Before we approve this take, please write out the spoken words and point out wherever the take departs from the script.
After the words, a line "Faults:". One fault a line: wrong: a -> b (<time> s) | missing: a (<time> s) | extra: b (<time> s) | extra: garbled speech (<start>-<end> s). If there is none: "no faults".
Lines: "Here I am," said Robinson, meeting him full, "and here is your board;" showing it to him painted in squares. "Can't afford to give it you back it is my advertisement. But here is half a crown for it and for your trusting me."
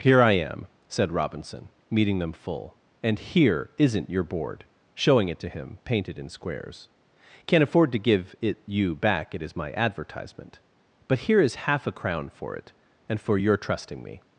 "Here I am," said Robinson, meeting them full, "and here isn't your board;" showing it to him painted in squares. "Can't afford to give it you back it is my advertisement. But here is half a crown for it and for your trusting me."
Faults:
wrong: him -> them (2.2 s)
wrong: is -> isn't (3.8 s)